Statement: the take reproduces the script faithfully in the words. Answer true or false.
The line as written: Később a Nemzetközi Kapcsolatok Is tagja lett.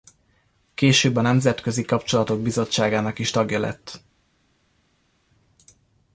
false